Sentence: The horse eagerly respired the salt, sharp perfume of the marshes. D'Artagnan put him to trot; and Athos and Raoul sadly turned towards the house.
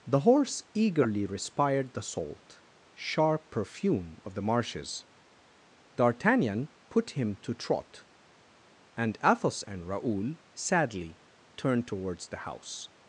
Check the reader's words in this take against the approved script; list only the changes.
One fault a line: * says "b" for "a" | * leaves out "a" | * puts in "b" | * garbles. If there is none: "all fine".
all fine